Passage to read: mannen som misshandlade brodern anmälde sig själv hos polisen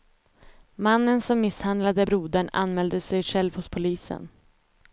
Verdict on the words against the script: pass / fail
pass